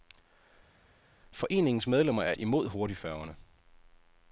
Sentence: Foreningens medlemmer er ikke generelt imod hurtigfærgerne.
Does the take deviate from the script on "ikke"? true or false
true